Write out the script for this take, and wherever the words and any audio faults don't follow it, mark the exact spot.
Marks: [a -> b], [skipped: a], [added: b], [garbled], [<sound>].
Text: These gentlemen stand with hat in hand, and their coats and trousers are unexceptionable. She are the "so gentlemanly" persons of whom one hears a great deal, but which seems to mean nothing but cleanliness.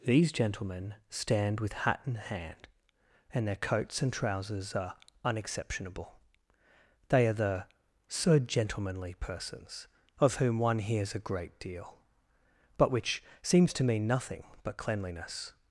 These gentlemen stand with hat in hand, and their coats and trousers are unexceptionable. [She -> They] are the "so gentlemanly" persons of whom one hears a great deal, but which seems to mean nothing but cleanliness.